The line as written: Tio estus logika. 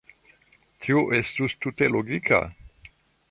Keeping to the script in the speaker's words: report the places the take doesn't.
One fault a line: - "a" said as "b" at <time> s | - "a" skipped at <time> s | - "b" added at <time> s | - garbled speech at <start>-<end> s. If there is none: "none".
- "tute" added at 1.6 s